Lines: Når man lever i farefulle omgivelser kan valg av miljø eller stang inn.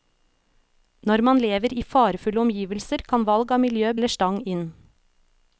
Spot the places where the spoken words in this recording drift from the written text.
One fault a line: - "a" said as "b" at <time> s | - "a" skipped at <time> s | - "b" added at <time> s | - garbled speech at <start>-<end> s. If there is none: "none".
none